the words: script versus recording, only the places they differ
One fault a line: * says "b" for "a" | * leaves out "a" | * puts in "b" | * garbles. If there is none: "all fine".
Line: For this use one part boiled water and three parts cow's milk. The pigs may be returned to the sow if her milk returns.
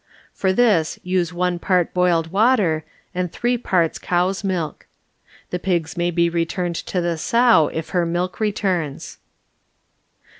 all fine